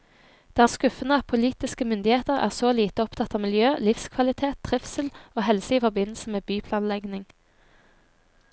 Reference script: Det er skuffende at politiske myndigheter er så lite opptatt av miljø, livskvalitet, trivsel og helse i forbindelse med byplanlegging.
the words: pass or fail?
pass